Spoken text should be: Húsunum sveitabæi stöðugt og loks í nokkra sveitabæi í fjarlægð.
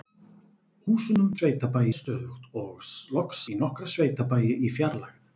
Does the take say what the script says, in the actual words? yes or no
yes